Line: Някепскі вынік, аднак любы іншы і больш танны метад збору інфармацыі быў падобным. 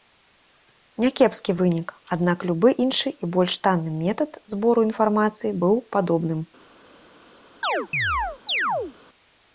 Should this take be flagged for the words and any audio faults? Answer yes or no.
yes